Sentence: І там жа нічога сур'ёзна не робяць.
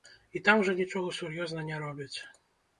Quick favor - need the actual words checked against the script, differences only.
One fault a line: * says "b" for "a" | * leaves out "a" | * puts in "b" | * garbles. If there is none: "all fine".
all fine